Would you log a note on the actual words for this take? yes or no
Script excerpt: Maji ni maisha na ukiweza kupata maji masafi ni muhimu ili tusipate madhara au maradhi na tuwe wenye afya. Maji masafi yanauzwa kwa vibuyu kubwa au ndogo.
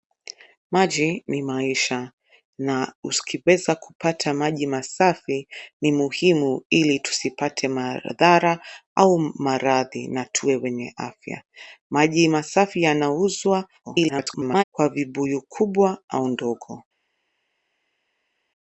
yes